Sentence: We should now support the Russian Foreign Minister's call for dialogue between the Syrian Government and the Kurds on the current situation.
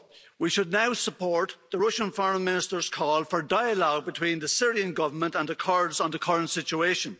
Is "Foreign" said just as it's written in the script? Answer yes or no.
yes